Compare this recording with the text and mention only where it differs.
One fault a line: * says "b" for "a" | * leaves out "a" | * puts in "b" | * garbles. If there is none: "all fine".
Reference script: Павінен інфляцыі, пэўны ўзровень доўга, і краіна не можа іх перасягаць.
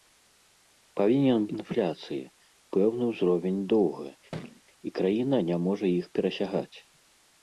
all fine